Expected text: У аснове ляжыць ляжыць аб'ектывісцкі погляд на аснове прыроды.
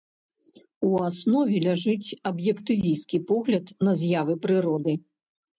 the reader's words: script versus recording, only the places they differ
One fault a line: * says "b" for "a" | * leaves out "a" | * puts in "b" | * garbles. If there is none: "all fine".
* leaves out "ляжыць"
* says "з'явы" for "аснове"